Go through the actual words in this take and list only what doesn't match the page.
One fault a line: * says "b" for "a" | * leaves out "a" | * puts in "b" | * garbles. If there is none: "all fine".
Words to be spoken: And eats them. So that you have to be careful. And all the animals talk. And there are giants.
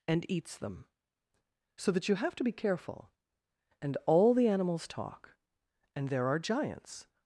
all fine